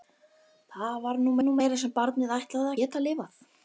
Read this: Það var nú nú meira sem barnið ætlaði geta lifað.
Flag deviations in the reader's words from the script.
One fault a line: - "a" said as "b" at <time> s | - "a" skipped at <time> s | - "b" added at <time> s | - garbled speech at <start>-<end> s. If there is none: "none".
none